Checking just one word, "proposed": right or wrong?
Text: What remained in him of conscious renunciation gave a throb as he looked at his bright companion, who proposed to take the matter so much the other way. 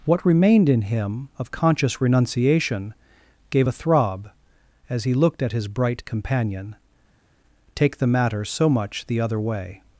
wrong